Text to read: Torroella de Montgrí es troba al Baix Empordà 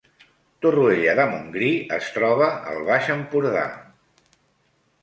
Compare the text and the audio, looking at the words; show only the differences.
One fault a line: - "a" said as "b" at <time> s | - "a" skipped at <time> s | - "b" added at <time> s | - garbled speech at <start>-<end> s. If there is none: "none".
none